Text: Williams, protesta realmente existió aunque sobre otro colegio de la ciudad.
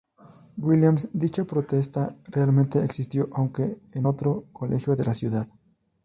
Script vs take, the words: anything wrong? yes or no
yes